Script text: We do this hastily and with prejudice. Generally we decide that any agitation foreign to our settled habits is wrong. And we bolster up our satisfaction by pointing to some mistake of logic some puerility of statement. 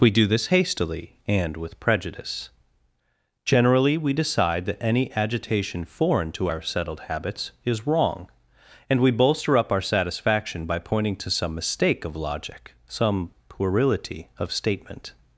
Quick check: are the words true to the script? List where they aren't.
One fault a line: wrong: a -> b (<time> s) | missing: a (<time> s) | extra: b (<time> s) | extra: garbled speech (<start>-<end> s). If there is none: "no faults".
no faults